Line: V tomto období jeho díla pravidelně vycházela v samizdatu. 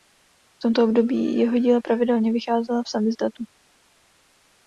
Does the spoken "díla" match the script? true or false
true